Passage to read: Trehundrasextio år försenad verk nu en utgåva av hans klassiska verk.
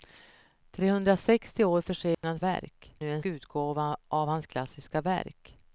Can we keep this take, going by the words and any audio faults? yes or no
no